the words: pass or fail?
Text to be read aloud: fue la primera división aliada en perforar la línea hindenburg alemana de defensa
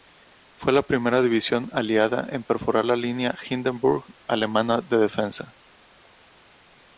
pass